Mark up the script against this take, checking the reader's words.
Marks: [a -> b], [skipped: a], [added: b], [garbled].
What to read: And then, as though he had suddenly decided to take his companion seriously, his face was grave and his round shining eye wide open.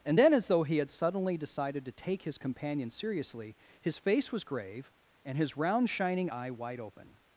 And then, as though he had suddenly decided to take his companion seriously, his face was grave and his round shining eye wide open.